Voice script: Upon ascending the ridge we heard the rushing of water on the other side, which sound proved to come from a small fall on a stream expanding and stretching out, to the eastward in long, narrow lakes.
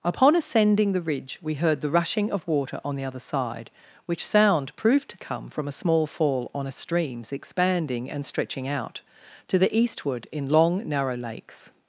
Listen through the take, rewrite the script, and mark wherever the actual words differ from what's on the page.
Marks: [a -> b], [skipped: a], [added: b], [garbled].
Upon ascending the ridge we heard the rushing of water on the other side, which sound proved to come from a small fall on a [stream -> streams] expanding and stretching out, to the eastward in long, narrow lakes.